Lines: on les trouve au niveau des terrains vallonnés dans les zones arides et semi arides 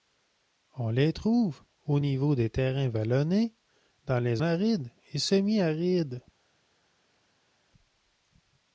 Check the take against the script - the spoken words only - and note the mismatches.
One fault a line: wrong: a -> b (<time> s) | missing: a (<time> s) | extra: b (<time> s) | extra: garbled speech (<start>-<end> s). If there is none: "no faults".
missing: zones (4.4 s)